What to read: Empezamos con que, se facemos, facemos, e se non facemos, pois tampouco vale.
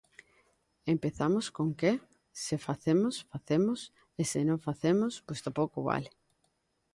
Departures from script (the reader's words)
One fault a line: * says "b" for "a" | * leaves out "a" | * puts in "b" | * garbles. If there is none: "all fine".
all fine